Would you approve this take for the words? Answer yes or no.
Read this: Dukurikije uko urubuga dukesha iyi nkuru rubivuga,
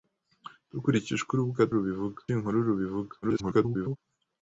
no